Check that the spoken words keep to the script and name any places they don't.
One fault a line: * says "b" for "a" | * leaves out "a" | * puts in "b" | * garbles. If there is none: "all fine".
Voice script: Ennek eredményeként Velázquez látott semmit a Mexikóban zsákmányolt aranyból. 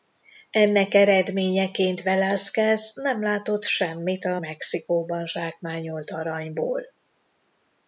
* puts in "nem"